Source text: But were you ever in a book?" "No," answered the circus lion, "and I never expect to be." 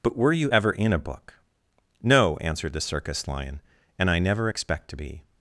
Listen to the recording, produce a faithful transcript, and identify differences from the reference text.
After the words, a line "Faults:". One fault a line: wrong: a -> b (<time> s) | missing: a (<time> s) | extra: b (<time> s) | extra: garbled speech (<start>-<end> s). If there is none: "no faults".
But were you ever in a book?" "No," answered the circus lion, "and I never expect to be."
Faults:
no faults